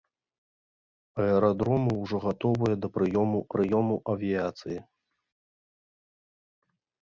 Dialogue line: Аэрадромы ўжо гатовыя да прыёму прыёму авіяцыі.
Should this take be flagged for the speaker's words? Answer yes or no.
no